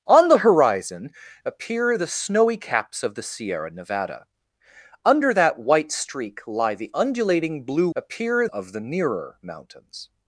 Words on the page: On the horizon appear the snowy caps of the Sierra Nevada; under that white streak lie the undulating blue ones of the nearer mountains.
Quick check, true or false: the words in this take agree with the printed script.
false